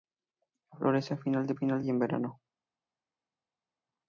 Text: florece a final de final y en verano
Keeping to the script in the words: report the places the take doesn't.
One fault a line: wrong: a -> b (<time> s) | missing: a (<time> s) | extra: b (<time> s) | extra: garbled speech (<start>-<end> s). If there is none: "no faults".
no faults